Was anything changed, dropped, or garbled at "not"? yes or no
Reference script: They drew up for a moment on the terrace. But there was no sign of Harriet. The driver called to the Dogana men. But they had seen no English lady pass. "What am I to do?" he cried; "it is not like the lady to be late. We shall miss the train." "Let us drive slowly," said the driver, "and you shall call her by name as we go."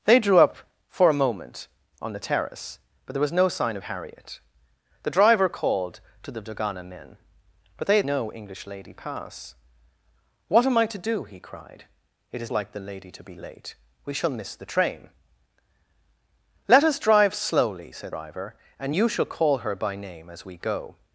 yes